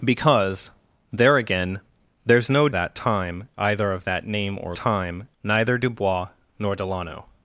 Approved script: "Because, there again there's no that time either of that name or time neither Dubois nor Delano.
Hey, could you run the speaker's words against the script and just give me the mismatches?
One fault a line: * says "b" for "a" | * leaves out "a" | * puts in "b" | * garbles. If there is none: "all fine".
all fine